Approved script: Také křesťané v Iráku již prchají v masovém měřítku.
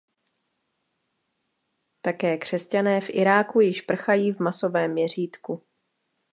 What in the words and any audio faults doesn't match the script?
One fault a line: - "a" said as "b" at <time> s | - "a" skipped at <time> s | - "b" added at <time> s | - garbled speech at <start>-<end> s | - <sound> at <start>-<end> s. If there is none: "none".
none